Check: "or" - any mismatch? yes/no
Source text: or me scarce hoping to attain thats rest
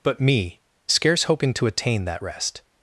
yes